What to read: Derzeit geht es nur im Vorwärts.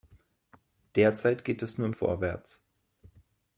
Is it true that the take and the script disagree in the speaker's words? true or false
false